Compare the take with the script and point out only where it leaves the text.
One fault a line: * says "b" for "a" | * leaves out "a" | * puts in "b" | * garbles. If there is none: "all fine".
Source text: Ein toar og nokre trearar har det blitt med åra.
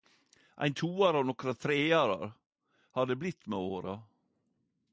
all fine